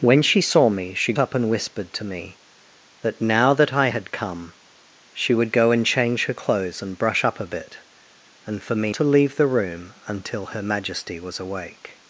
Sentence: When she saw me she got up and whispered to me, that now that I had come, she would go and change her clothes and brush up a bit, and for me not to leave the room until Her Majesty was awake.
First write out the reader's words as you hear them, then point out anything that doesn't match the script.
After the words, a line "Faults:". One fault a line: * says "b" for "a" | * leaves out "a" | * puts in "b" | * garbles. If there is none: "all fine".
When she saw me she up and whispered to me, that now that I had come, she would go and change her clothes and brush up a bit, and for me to leave the room until Her Majesty was awake.
Faults:
* leaves out "got"
* leaves out "not"